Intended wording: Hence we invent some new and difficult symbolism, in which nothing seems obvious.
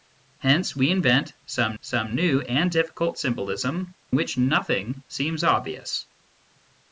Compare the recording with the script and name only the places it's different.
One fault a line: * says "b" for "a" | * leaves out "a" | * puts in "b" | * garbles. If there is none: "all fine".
* puts in "some"
* leaves out "in"